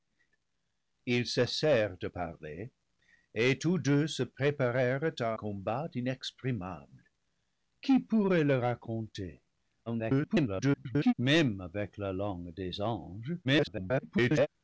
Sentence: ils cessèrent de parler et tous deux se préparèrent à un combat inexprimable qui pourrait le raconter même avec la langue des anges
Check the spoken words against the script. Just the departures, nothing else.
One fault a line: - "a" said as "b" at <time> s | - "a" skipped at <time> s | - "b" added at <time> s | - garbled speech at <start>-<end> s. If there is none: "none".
- "un" skipped at 5.4 s
- garbled speech at 9.9-11.1 s
- garbled speech at 13.4-14.5 s